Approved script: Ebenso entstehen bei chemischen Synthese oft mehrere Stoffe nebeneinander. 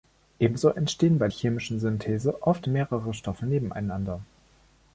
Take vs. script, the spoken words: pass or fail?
pass